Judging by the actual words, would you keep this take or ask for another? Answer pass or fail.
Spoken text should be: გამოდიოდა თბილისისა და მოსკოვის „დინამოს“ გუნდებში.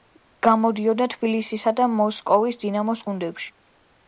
pass